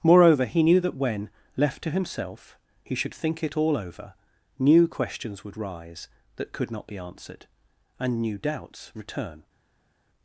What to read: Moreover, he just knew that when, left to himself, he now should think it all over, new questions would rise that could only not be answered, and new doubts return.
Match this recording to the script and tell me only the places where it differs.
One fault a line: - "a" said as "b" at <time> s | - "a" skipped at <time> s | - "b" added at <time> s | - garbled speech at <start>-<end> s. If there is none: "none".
- "just" skipped at 0.6 s
- "now" skipped at 3.0 s
- "only" skipped at 6.7 s